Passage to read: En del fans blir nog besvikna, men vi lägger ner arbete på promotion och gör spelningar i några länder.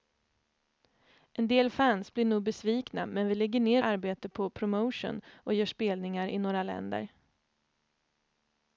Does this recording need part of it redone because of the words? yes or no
no